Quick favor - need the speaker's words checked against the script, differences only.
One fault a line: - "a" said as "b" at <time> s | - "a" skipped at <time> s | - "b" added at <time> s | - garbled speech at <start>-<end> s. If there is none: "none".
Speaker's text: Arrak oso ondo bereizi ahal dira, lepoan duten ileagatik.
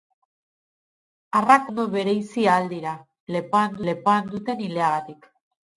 - "oso" skipped at 1.7 s
- "lepoan" added at 3.9 s